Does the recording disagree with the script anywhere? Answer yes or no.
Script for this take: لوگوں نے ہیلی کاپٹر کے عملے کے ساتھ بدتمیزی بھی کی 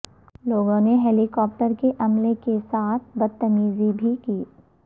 no